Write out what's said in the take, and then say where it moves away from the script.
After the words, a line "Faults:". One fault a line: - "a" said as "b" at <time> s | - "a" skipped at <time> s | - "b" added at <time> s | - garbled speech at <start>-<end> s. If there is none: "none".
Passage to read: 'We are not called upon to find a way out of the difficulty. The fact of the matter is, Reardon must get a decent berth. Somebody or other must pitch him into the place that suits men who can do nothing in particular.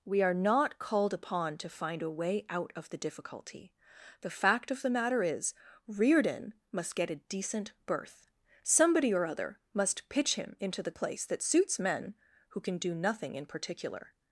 'We are not called upon to find a way out of the difficulty. The fact of the matter is, Reardon must get a decent berth. Somebody or other must pitch him into the place that suits men who can do nothing in particular.
Faults:
none